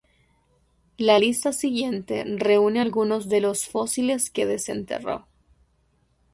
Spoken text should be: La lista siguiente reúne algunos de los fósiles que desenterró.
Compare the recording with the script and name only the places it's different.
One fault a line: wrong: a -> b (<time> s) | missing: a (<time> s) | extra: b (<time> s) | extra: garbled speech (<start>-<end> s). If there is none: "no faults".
no faults